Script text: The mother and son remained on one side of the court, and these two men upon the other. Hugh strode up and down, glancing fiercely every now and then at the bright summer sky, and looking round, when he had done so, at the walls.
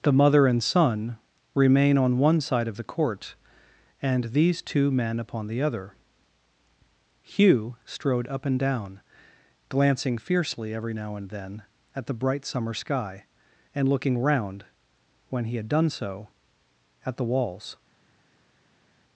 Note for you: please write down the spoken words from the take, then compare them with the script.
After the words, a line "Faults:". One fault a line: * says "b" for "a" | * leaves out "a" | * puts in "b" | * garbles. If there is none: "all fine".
The mother and son remain on one side of the court, and these two men upon the other. Hugh strode up and down, glancing fiercely every now and then at the bright summer sky, and looking round, when he had done so, at the walls.
Faults:
* says "remain" for "remained"